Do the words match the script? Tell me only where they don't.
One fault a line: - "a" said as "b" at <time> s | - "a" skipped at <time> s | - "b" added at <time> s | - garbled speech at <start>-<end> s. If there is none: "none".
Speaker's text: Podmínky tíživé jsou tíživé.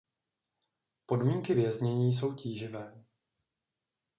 - "tíživé" said as "věznění" at 1.5 s